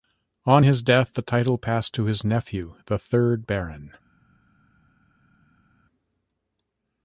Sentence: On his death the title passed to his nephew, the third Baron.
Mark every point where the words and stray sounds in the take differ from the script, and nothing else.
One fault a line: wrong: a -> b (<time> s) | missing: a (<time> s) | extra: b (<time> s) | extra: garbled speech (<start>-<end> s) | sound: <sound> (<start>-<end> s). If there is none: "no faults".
no faults